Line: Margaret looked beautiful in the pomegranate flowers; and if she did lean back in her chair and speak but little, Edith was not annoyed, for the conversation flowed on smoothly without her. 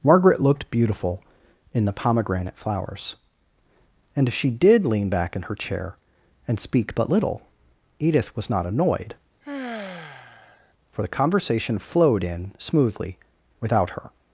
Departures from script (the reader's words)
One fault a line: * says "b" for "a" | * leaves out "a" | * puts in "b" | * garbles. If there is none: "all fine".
* says "in" for "on"